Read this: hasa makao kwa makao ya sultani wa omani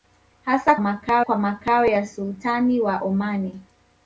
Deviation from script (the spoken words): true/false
false